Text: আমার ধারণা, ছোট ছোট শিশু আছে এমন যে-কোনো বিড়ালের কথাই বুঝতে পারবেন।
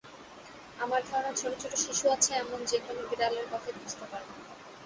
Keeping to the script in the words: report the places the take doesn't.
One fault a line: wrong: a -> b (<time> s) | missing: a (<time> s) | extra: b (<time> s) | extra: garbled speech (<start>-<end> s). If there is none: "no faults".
no faults